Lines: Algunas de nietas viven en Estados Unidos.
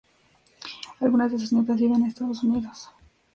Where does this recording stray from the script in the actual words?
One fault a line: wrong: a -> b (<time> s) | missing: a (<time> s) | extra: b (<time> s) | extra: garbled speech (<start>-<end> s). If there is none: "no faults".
extra: sus (1.4 s)